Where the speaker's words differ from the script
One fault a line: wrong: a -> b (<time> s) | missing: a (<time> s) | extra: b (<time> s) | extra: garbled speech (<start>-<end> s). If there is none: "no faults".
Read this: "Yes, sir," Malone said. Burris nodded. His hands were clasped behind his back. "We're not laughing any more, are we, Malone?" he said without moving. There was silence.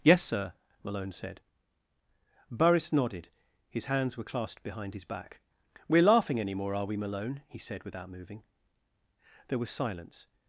missing: not (6.0 s)